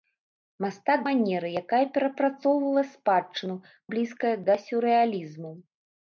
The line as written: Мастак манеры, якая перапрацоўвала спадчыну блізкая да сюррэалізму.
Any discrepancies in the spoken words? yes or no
no